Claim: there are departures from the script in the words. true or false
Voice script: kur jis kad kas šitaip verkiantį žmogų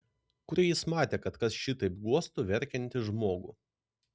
true